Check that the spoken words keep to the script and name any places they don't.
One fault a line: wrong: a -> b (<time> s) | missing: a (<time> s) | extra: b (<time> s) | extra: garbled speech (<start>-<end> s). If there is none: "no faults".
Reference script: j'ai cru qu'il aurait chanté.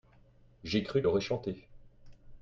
missing: qu'il (1.0 s)